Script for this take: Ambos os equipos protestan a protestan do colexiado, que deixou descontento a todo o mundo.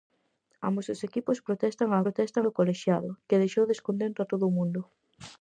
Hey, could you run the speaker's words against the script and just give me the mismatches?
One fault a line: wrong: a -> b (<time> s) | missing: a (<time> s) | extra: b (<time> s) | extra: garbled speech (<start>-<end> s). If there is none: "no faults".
no faults